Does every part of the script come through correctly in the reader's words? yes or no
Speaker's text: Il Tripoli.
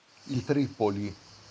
yes